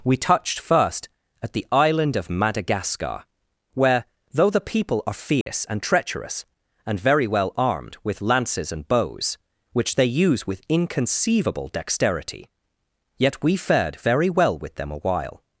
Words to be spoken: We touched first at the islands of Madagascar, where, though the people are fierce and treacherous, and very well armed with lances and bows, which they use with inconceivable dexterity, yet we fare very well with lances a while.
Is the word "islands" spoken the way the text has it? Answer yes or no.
no